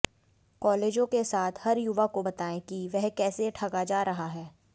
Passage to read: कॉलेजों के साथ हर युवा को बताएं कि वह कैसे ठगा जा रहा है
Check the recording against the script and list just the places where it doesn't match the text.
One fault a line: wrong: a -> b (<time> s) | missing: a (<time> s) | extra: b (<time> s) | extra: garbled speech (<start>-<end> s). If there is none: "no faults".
no faults